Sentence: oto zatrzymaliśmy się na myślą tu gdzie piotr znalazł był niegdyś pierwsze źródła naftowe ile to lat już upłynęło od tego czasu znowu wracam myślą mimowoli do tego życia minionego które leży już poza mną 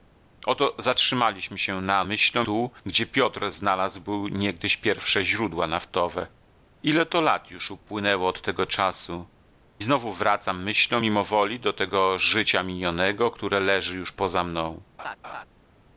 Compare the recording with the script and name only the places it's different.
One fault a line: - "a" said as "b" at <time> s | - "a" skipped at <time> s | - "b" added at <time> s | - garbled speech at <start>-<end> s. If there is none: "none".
none